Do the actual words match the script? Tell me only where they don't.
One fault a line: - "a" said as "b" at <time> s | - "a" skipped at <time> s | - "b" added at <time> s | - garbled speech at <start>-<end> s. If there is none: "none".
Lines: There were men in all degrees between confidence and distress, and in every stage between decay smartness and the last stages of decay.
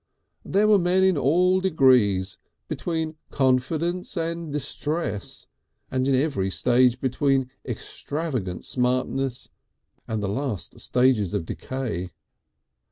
- "decay" said as "extravagant" at 7.7 s